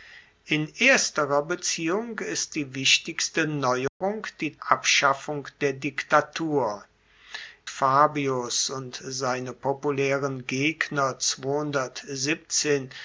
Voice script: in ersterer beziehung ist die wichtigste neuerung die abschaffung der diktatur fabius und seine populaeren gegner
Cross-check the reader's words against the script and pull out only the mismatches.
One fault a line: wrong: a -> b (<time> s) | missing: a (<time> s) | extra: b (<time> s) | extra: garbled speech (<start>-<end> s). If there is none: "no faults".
no faults